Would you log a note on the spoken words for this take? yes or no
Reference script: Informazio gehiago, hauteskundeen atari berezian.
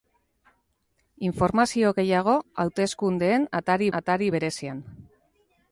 yes